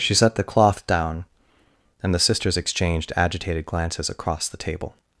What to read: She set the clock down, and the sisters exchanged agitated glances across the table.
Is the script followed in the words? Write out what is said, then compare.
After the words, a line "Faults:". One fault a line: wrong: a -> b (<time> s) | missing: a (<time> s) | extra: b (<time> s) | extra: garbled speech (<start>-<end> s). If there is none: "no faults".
She set the cloth down, and the sisters exchanged agitated glances across the table.
Faults:
wrong: clock -> cloth (0.4 s)